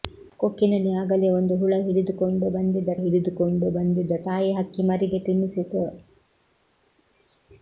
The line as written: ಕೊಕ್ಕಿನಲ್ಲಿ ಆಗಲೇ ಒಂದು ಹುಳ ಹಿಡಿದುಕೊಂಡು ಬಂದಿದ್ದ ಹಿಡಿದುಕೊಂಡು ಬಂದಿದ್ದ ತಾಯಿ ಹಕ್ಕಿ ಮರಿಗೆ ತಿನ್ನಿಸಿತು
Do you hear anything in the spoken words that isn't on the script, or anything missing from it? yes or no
no